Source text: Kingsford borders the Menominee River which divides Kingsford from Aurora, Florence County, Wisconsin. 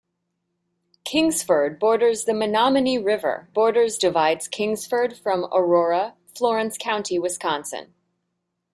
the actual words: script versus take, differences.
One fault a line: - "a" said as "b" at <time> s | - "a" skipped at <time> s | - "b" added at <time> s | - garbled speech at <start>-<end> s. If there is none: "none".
- "which" said as "borders" at 3.5 s